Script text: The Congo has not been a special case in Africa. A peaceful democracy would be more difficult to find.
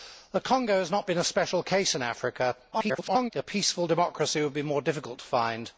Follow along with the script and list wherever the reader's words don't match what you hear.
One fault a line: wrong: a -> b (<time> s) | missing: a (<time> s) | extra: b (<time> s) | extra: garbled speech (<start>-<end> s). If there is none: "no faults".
extra: garbled speech (2.7-3.3 s)